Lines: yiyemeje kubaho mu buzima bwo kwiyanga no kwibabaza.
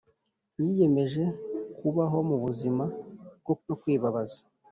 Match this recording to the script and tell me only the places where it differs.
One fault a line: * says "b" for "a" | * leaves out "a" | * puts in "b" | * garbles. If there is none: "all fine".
* leaves out "kwiyanga"